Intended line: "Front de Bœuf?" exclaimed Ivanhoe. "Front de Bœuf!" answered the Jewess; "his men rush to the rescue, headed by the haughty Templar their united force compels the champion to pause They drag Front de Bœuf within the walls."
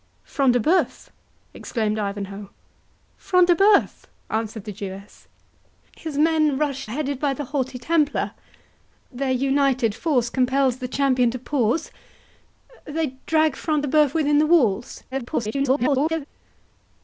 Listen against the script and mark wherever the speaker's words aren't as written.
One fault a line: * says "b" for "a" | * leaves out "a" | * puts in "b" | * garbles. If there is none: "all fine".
* leaves out "to the rescue"
* garbles